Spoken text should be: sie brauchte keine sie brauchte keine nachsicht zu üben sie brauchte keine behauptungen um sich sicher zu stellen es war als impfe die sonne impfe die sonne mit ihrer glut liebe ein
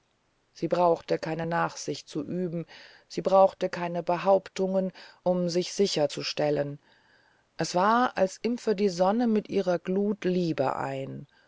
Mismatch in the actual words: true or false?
true